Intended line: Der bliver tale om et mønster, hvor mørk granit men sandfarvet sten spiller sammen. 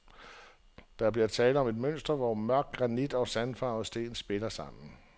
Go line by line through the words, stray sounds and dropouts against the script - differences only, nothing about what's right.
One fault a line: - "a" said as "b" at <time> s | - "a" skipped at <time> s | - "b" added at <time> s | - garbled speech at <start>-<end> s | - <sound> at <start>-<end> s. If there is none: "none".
- "men" said as "og" at 3.1 s